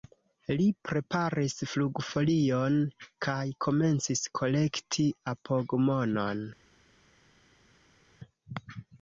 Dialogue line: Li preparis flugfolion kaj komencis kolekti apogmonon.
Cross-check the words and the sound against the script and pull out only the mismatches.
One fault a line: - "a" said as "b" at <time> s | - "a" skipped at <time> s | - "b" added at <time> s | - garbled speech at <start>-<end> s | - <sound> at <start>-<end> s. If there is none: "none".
none